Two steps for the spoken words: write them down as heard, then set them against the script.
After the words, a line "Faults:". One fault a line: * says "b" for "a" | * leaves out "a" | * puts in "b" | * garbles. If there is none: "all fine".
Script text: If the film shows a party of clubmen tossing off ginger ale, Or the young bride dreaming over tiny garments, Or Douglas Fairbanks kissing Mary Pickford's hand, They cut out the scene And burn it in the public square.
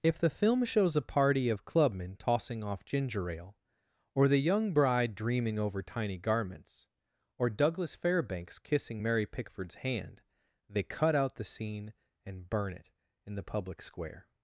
If the film shows a party of clubmen tossing off ginger ale, Or the young bride dreaming over tiny garments, Or Douglas Fairbanks kissing Mary Pickford's hand, They cut out the scene And burn it in the public square.
Faults:
all fine